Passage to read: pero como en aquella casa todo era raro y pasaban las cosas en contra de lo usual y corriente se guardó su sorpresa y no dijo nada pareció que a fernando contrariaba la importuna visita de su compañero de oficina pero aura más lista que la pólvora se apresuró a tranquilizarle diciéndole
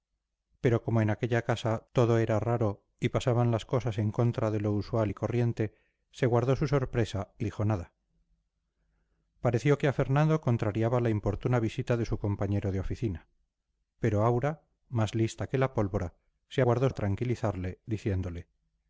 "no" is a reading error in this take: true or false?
true